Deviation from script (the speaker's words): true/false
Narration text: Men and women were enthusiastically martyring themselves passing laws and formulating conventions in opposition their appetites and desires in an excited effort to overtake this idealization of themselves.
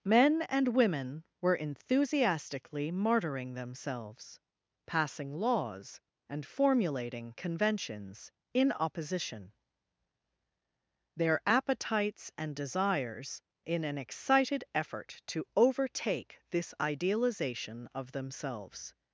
false